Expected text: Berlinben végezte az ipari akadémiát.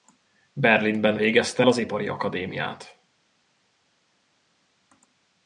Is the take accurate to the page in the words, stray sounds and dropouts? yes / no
yes